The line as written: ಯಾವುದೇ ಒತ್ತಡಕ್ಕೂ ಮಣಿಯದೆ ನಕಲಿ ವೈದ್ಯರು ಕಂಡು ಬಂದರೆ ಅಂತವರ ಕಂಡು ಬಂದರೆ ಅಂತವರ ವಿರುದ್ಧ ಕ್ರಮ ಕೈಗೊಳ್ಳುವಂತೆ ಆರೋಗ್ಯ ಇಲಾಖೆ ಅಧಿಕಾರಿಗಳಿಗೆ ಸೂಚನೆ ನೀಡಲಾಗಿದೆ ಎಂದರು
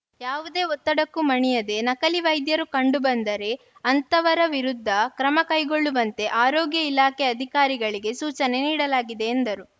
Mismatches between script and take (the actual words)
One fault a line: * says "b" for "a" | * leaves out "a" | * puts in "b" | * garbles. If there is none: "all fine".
* leaves out "ಕಂಡು ಬಂದರೆ ಅಂತವರ"